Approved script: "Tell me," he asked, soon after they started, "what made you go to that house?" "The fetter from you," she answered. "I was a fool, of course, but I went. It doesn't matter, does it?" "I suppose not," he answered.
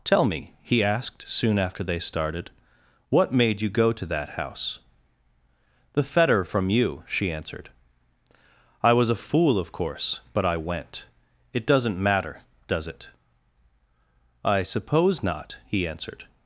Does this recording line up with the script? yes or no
yes